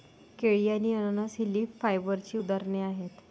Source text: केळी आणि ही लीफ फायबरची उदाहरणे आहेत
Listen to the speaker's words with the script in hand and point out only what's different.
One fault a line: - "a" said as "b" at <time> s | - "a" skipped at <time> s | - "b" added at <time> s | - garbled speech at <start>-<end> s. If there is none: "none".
- "अननस" added at 0.9 s